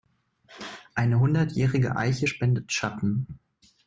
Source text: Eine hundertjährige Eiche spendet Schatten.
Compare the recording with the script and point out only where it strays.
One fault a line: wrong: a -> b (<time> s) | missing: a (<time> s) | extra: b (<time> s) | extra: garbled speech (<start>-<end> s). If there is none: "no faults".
no faults